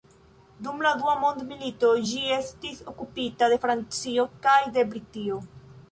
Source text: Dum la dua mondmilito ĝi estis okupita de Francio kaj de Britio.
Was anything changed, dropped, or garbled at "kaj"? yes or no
no